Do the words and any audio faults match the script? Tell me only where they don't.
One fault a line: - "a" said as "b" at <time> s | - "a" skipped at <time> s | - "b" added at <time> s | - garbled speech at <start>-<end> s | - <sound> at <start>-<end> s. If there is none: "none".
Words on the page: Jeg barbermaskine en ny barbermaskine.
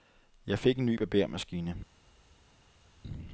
- "barbermaskine" said as "fik" at 0.6 s